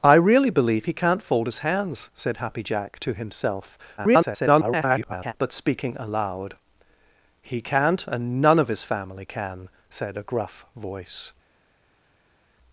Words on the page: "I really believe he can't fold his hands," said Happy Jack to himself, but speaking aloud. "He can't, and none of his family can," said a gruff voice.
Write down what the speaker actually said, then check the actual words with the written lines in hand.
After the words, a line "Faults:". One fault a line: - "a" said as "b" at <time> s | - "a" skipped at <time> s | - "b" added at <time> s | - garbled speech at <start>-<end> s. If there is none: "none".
"I really believe he can't fold his hands," said Happy Jack to himself, [garbled] but speaking aloud. "He can't, and none of his family can," said a gruff voice.
Faults:
- garbled speech at 4.0-5.3 s